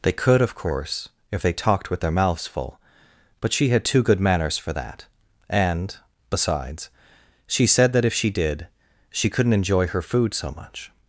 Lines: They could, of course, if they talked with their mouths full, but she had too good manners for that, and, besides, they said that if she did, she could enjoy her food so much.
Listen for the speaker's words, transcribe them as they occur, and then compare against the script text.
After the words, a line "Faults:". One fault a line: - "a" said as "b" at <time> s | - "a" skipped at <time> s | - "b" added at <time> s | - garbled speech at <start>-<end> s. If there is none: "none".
They could, of course, if they talked with their mouths full, but she had too good manners for that, and, besides, she said that if she did, she couldn't enjoy her food so much.
Faults:
- "they" said as "she" at 7.5 s
- "could" said as "couldn't" at 9.3 s